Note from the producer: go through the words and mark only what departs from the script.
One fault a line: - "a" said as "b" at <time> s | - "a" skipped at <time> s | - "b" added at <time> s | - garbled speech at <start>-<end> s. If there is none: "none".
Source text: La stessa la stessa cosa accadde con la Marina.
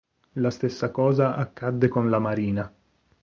- "la stessa" skipped at 0.9 s